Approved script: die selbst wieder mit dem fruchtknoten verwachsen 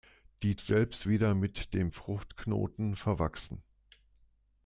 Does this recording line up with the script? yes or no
yes